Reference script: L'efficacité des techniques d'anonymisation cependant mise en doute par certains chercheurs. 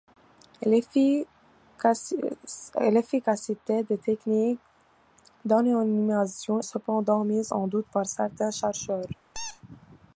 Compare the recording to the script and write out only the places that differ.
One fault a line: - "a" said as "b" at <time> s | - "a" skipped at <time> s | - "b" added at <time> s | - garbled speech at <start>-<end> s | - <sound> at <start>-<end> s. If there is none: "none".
- squeak at 9.3-9.6 s